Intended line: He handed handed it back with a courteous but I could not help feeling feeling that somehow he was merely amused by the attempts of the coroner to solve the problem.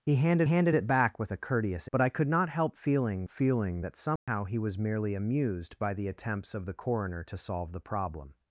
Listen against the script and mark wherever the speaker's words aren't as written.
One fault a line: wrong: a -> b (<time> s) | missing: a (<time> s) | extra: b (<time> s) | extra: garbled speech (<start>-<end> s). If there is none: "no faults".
no faults